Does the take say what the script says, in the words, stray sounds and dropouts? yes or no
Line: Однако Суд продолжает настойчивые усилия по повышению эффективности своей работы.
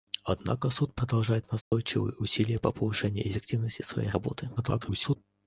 no